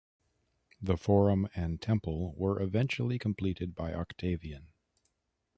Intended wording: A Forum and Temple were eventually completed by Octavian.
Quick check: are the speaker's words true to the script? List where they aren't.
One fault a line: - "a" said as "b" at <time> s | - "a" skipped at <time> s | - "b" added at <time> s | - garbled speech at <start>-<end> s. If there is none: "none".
- "A" said as "The" at 0.8 s